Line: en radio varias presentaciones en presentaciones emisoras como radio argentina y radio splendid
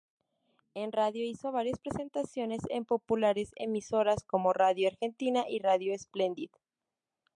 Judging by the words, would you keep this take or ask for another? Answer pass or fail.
fail